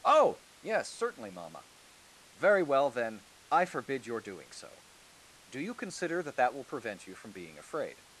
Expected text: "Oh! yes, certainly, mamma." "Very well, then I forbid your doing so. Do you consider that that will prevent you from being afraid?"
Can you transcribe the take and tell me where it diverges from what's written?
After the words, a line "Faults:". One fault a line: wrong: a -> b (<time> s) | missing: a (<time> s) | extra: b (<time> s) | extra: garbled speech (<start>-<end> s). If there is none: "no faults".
"Oh! yes, certainly, mamma." "Very well, then I forbid your doing so. Do you consider that that will prevent you from being afraid?"
Faults:
no faults